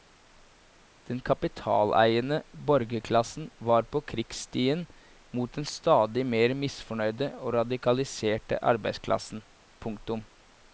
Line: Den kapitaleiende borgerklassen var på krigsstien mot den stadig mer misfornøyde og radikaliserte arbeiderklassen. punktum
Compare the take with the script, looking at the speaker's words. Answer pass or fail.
pass